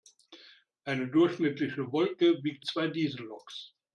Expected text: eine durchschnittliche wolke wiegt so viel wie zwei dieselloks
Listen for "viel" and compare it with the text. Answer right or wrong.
wrong